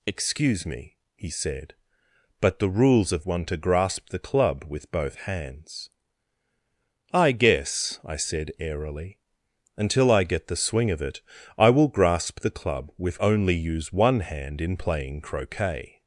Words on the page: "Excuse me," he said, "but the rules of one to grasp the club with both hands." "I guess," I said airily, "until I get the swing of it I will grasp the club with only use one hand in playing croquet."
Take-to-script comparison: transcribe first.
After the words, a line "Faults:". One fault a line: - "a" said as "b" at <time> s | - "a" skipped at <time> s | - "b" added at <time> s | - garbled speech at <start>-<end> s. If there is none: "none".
"Excuse me," he said, "but the rules of one to grasp the club with both hands." "I guess," I said airily, "until I get the swing of it I will grasp the club with only use one hand in playing croquet."
Faults:
none